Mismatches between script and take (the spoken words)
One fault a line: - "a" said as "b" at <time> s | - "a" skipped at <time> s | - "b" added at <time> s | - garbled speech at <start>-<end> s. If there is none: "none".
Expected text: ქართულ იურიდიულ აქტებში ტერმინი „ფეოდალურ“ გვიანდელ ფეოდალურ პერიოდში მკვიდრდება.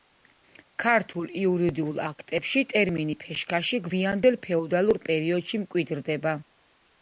- "ფეოდალურ" said as "ფეშქაში" at 3.3 s